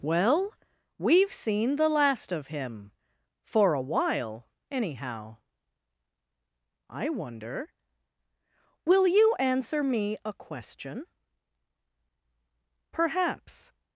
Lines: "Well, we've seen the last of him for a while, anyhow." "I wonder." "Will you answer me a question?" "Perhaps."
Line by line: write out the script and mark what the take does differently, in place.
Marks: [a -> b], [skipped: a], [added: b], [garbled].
"Well, we've seen the last of him for a while, anyhow." "I wonder." "Will you answer me a question?" "Perhaps."